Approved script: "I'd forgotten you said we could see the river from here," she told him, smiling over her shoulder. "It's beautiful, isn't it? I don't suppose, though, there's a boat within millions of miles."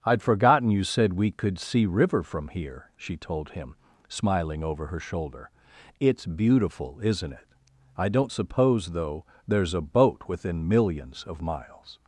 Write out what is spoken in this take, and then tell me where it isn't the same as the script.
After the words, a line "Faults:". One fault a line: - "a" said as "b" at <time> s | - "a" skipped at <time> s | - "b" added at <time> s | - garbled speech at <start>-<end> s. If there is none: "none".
"I'd forgotten you said we could see river from here," she told him, smiling over her shoulder. "It's beautiful, isn't it? I don't suppose, though, there's a boat within millions of miles."
Faults:
- "the" skipped at 1.9 s